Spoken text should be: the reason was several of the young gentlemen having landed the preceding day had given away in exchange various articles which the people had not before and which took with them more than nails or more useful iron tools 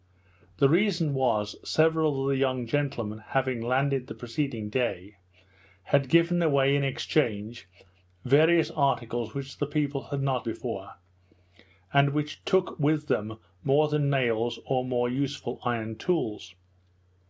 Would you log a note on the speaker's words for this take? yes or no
no